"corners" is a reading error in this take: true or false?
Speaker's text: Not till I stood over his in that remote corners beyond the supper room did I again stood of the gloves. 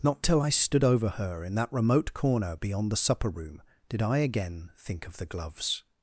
true